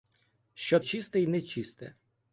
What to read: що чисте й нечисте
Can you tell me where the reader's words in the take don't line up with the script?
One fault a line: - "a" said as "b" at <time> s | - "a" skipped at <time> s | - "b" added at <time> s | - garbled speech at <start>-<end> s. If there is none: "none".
none